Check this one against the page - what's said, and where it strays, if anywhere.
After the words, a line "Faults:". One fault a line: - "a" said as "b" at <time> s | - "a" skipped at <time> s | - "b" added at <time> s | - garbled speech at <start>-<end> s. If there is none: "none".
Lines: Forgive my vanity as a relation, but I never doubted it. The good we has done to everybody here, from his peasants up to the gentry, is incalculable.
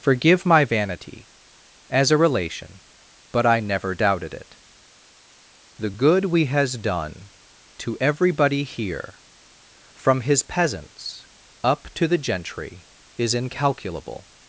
Forgive my vanity as a relation, but I never doubted it. The good we has done to everybody here, from his peasants up to the gentry, is incalculable.
Faults:
none